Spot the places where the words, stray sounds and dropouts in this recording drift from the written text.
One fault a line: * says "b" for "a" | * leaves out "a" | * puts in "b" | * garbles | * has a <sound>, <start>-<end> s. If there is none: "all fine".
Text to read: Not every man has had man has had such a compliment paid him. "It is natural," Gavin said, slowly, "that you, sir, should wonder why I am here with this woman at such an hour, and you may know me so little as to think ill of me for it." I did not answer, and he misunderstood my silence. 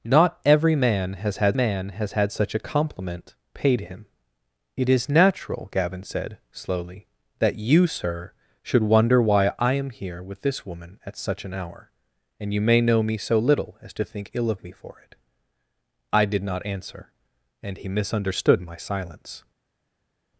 all fine